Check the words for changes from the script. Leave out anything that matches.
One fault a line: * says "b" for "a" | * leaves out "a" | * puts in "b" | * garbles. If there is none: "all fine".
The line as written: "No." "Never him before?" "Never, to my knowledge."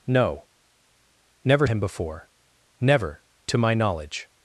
all fine